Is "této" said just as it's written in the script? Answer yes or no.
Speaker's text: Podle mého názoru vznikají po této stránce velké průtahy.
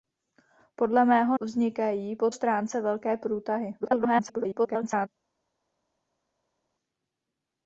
no